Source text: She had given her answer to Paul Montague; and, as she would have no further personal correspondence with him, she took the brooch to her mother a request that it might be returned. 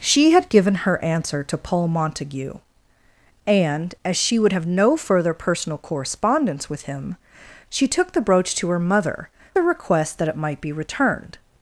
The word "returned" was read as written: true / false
true